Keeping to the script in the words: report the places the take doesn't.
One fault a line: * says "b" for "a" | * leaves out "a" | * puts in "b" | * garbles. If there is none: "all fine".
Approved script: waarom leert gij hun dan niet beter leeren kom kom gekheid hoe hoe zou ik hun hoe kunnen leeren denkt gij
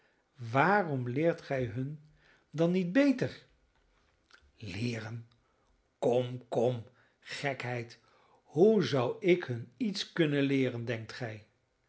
* leaves out "hoe"
* says "iets" for "hoe"